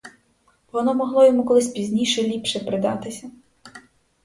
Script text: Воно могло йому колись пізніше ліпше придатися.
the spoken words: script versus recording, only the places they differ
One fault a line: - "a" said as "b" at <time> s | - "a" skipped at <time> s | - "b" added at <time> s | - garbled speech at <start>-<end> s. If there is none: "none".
none